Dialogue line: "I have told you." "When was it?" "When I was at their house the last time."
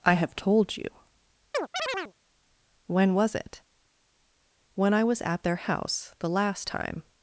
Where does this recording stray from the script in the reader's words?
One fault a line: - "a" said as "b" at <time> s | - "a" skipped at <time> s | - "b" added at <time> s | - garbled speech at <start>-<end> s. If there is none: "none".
none